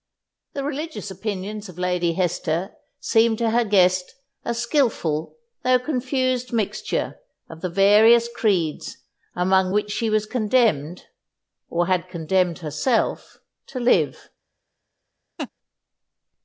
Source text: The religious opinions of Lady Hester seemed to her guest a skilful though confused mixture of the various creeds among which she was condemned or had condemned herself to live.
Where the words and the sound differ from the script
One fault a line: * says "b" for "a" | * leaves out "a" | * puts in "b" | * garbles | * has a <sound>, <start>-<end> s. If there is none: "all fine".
* has a laugh, 15.4-15.5 s